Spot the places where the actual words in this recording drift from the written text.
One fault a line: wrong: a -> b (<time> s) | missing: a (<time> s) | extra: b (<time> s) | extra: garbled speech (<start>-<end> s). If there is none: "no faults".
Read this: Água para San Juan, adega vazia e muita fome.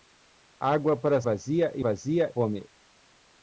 missing: San Juan adega (1.2 s)
wrong: muita -> vazia (1.8 s)